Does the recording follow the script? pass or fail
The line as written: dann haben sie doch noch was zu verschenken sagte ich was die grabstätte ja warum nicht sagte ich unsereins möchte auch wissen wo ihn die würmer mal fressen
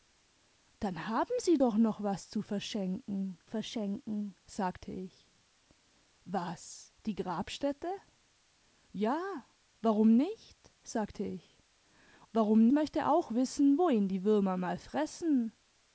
fail